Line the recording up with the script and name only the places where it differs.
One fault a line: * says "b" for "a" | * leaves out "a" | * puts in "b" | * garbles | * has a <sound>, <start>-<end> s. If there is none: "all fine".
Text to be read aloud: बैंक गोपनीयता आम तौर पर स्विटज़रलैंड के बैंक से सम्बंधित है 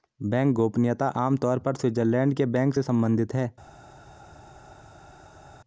all fine